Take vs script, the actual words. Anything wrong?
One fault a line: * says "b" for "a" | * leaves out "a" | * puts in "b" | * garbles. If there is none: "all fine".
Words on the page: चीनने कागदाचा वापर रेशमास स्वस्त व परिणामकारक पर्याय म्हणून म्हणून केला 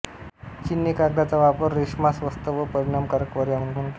all fine